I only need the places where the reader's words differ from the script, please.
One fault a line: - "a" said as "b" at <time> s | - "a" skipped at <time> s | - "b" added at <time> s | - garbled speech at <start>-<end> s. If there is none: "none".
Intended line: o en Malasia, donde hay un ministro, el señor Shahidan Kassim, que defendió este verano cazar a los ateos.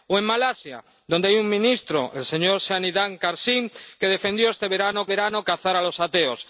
- "verano" added at 5.1 s